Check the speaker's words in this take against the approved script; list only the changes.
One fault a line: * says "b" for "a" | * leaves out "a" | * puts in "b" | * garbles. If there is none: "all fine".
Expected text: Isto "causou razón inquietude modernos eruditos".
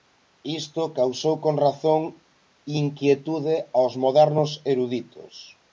* puts in "con"
* puts in "aos"